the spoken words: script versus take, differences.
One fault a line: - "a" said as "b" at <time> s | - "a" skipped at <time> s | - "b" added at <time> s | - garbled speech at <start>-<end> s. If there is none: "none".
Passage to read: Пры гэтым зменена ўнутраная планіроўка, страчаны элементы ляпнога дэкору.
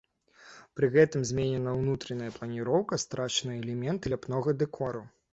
none